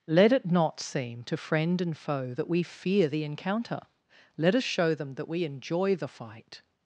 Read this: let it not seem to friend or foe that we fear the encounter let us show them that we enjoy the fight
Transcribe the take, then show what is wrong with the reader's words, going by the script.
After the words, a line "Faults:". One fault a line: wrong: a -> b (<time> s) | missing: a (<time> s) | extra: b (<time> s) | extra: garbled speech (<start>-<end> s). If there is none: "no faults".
let it not seem to friend and foe that we fear the encounter let us show them that we enjoy the fight
Faults:
wrong: or -> and (1.8 s)